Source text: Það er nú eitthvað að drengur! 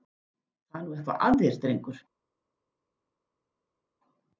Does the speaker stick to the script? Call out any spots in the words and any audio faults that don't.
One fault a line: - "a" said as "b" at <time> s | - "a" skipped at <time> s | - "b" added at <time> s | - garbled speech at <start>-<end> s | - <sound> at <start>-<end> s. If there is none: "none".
- "þér" added at 1.4 s